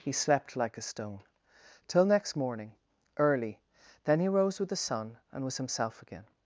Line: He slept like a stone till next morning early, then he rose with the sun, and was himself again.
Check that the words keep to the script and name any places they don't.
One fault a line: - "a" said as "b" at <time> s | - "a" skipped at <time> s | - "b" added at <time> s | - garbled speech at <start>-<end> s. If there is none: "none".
none